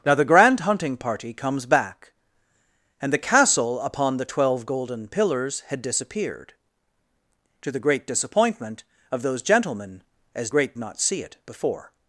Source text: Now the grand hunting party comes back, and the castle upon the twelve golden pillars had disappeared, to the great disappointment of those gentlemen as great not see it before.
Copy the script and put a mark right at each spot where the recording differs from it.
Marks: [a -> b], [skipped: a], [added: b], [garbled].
Now the grand hunting party comes back, and the castle upon the twelve golden pillars had disappeared, to the great disappointment of those gentlemen as great not see it before.